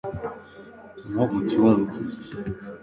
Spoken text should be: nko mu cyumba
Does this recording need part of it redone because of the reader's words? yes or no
no